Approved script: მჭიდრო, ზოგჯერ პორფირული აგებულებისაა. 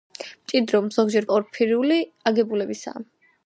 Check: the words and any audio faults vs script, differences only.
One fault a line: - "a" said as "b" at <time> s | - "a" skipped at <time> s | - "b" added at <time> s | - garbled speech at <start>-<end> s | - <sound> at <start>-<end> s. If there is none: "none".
none